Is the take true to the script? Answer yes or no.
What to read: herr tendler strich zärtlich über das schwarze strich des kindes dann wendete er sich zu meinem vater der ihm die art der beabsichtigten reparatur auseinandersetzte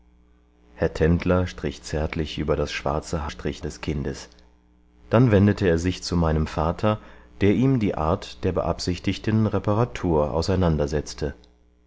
yes